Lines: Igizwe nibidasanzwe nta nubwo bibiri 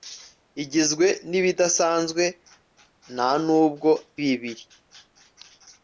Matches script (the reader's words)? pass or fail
pass